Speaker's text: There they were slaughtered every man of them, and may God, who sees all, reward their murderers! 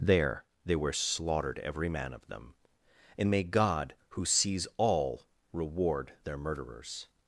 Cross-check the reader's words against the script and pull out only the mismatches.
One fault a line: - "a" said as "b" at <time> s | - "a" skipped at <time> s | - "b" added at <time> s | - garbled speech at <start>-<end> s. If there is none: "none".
none